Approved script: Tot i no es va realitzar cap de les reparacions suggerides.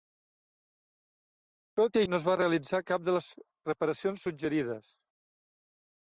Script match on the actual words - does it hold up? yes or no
yes